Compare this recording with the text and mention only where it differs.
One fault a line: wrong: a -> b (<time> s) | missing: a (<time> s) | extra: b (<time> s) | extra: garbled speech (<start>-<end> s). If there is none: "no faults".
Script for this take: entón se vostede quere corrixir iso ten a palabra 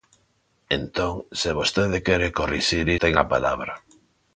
missing: iso (2.9 s)